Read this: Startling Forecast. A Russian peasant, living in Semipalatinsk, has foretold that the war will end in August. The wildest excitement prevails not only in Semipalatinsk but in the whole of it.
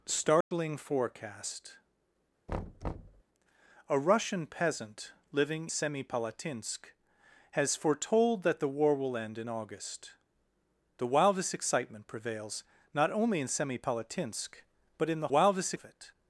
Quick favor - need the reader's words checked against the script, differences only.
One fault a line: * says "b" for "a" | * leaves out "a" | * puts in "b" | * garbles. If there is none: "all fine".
* leaves out "in"
* says "wildest" for "whole"